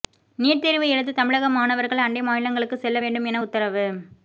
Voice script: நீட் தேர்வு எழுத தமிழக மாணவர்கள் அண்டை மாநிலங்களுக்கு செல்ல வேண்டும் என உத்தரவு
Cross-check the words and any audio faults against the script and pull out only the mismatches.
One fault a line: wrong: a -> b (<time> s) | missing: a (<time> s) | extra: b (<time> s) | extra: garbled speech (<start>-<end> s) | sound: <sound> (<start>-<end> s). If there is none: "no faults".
no faults